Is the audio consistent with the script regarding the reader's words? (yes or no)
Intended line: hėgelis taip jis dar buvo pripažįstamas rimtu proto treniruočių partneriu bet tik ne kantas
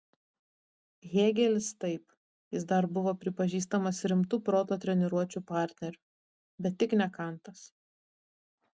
yes